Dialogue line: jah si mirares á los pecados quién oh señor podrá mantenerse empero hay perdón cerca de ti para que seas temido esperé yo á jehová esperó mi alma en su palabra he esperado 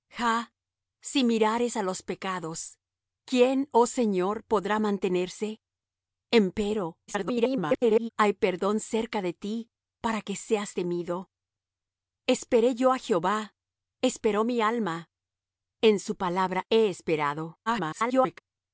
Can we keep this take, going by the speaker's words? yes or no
no